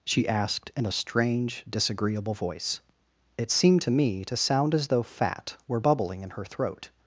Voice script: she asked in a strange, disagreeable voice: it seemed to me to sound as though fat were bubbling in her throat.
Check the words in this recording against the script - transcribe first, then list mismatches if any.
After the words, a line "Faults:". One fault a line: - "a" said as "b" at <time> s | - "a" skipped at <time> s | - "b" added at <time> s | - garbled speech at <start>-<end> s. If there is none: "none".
she asked in a strange, disagreeable voice: it seemed to me to sound as though fat were bubbling in her throat.
Faults:
none